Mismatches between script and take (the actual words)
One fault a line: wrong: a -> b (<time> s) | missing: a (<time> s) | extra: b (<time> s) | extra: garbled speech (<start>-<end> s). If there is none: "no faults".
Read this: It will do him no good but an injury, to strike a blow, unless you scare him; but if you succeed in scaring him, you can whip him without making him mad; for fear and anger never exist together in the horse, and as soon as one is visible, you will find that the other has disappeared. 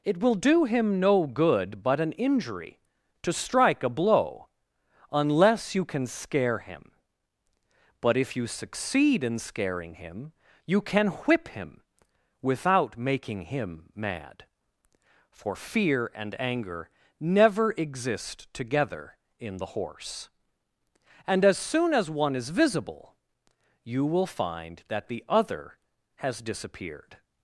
extra: can (5.8 s)